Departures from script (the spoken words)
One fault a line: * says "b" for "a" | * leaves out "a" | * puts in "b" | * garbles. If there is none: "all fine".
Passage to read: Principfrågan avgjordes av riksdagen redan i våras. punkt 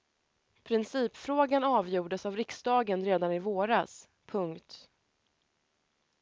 all fine